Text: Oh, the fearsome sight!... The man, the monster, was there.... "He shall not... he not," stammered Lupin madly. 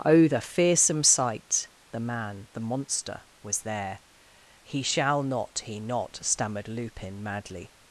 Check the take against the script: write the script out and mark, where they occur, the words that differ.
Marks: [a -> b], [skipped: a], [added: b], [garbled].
Oh, the fearsome sight!... The man, the monster, was there.... "He shall not... he not," stammered Lupin madly.